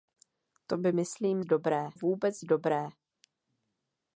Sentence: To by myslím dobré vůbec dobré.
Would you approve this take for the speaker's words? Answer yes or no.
yes